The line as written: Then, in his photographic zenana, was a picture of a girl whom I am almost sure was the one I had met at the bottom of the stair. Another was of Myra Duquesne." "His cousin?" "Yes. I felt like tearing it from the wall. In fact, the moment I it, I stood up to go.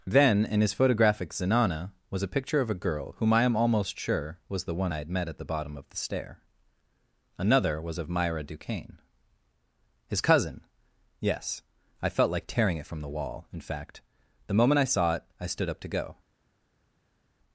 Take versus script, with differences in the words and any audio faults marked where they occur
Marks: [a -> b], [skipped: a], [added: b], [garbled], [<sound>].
Then, in his photographic zenana, was a picture of a girl whom I am almost sure was the one I had met at the bottom of the stair. Another was of Myra Duquesne." "His cousin?" "Yes. I felt like tearing it from the wall. In fact, the moment I [added: saw] it, I stood up to go.